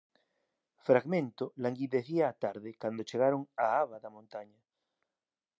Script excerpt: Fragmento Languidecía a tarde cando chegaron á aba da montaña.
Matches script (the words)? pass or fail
pass